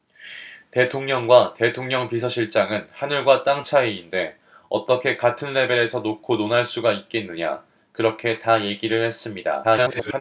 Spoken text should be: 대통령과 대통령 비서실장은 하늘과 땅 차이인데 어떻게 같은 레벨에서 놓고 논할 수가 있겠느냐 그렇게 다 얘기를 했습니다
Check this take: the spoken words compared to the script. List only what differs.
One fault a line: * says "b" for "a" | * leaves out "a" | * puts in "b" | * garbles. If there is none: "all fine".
* garbles